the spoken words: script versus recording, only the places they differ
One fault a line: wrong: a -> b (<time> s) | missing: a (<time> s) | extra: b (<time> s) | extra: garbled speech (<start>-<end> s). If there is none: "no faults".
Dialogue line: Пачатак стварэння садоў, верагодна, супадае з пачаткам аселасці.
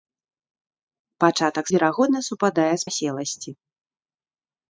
missing: стварэння садоў (1.6 s)
missing: пачаткам (2.9 s)